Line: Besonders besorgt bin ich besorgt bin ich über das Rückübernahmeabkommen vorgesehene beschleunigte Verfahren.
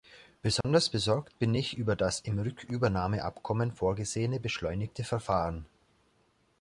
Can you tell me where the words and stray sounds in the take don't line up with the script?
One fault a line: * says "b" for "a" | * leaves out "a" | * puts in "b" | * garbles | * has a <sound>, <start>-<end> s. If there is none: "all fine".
* has a dropout, 0.6-0.6 s
* leaves out "besorgt bin ich"
* puts in "im"